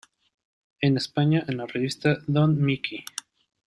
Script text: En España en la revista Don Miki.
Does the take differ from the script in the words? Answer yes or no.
no